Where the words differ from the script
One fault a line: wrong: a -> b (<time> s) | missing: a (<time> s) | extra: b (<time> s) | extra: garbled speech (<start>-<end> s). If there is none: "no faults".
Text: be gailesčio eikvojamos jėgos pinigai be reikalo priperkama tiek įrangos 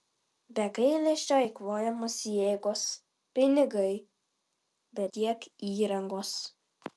missing: reikalo priperkama (5.1 s)